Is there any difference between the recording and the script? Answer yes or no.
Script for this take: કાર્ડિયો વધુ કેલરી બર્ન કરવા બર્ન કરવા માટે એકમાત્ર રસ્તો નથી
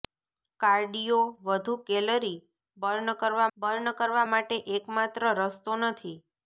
no